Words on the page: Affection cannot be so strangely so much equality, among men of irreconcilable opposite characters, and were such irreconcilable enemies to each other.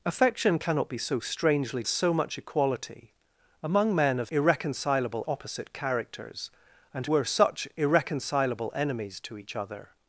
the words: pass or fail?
pass